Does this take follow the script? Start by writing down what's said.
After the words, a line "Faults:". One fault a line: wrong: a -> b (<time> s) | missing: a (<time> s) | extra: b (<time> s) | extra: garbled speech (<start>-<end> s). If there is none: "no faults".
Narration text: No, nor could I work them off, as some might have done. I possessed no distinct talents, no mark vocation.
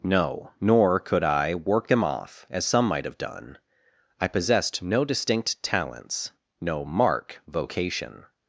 No, nor could I work them off, as some might have done. I possessed no distinct talents, no mark vocation.
Faults:
no faults